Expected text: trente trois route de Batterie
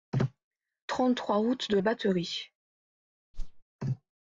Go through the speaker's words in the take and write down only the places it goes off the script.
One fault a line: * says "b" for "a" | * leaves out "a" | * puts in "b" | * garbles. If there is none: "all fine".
all fine